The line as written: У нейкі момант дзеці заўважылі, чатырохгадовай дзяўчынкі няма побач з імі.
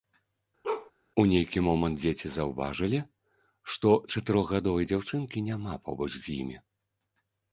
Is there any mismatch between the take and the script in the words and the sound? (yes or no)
yes